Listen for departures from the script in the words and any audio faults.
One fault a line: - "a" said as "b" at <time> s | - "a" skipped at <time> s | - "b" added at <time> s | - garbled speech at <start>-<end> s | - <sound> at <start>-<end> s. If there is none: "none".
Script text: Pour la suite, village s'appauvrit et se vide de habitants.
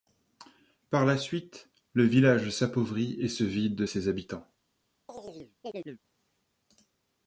- "Pour" said as "Par" at 0.9 s
- "le" added at 1.9 s
- "ses" added at 3.8 s
- chirp at 5.1-6.0 s